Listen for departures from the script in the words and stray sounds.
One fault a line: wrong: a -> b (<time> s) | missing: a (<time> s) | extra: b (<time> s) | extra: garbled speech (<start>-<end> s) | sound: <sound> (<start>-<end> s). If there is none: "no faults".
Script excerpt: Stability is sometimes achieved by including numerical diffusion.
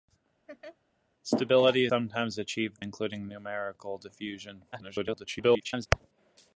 sound: laugh (0.5-0.8 s)
missing: is (1.9 s)
missing: by (2.8 s)
extra: garbled speech (4.7-5.9 s)